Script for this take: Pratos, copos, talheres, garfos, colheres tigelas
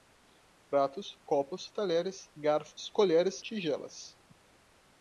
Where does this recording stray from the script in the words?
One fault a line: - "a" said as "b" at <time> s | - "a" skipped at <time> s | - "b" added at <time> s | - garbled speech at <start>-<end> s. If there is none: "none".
none